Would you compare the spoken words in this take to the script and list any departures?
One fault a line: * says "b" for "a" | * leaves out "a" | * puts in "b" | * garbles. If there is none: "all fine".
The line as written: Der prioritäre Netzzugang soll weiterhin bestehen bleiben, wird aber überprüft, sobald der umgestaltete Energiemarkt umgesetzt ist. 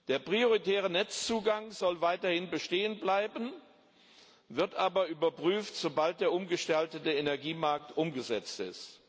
all fine